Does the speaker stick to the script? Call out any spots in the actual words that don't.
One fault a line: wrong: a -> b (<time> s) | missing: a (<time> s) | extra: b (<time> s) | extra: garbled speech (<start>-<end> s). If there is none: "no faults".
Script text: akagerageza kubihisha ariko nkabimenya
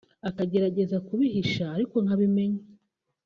no faults